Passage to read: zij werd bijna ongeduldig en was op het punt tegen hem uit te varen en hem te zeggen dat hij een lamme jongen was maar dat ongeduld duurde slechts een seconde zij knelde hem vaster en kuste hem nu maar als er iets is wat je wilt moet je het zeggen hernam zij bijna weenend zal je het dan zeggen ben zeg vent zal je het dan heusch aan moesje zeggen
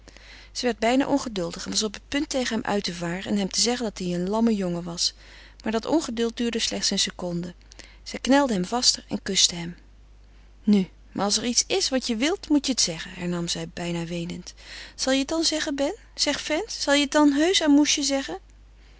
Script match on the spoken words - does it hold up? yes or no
yes